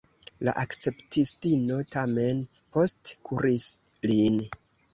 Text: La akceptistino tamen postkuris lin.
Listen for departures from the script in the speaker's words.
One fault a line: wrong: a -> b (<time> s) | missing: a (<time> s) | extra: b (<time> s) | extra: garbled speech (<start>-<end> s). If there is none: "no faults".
no faults